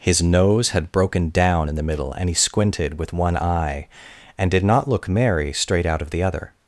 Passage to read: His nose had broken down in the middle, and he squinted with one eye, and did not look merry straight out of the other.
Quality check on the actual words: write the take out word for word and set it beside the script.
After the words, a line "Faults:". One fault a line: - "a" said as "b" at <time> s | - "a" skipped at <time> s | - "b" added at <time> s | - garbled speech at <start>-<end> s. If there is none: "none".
His nose had broken down in the middle, and he squinted with one eye, and did not look merry straight out of the other.
Faults:
none